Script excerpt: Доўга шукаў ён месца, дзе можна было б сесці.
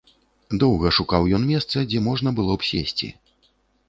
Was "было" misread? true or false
false